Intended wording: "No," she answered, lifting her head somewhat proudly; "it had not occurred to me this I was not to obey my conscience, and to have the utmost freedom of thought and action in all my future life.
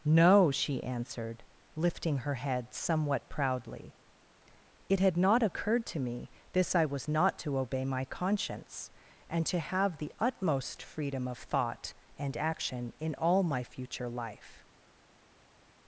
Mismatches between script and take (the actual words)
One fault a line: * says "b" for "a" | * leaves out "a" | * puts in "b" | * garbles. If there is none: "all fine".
all fine